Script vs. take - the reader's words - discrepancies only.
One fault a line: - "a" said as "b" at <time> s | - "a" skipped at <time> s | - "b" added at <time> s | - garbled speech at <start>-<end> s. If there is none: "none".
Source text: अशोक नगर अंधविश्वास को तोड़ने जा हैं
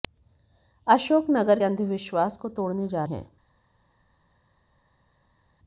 none